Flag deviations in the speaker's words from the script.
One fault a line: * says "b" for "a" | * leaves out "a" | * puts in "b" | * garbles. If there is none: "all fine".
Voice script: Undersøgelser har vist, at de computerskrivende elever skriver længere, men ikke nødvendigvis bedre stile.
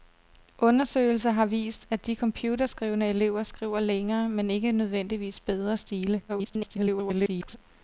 * garbles